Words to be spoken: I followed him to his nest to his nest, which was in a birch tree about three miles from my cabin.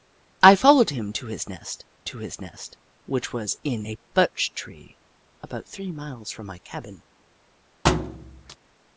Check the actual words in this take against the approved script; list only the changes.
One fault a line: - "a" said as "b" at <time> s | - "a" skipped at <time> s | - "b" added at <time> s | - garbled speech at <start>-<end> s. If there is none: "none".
none